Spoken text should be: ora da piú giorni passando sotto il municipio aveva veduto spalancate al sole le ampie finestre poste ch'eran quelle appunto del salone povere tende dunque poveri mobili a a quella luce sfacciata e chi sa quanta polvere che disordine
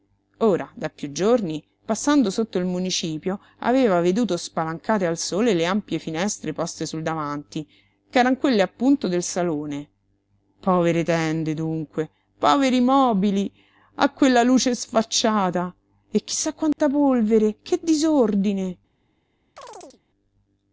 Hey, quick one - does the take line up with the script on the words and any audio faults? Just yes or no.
no